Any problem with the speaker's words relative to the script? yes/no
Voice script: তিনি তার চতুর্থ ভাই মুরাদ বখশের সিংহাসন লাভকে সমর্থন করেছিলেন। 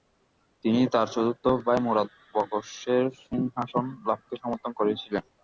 no